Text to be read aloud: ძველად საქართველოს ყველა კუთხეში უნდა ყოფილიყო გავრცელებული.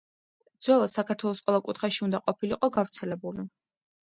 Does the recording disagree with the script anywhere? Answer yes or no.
no